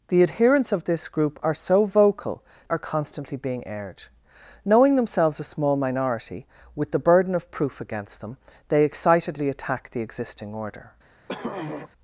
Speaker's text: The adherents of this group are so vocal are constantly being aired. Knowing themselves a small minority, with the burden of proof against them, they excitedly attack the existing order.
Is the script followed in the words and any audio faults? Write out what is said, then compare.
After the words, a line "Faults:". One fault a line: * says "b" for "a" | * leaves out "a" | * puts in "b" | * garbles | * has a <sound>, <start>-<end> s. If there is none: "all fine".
The adherents of this group are so vocal are constantly being aired. Knowing themselves a small minority, with the burden of proof against them, they excitedly attack the existing order.
Faults:
* has a throat clearing, 11.3-11.9 s